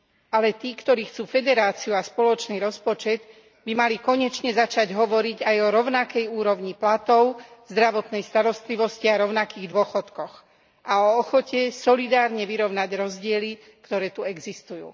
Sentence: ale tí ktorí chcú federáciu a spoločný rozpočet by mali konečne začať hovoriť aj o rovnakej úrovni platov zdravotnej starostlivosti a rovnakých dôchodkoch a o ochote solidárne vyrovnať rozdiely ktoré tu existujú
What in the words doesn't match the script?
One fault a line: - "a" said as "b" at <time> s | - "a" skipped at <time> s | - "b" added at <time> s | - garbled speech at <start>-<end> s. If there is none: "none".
none